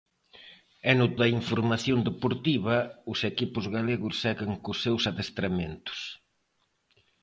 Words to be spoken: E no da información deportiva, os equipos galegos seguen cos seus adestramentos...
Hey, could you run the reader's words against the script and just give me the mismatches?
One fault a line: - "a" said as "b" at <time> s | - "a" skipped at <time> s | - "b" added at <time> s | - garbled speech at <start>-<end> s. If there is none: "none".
none